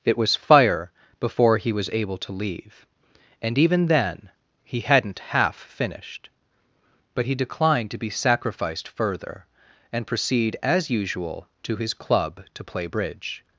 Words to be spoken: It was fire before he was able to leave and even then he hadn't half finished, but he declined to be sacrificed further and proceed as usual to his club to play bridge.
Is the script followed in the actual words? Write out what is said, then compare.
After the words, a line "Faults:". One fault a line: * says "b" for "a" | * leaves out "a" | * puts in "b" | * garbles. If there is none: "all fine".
It was fire before he was able to leave and even then he hadn't half finished, but he declined to be sacrificed further and proceed as usual to his club to play bridge.
Faults:
all fine